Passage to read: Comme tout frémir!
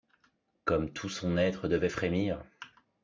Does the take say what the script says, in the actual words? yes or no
no